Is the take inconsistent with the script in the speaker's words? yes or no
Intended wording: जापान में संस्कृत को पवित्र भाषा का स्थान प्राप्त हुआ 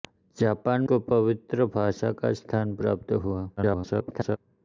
yes